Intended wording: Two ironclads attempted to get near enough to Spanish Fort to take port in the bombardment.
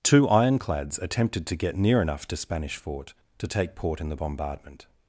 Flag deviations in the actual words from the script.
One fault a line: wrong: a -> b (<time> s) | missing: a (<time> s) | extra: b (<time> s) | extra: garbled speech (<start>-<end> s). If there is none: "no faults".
no faults